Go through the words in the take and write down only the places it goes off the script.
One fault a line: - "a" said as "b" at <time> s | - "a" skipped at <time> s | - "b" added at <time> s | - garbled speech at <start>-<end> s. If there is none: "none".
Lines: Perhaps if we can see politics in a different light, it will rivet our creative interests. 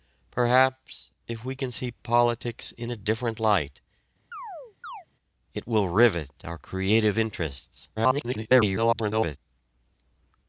- garbled speech at 8.0-9.4 s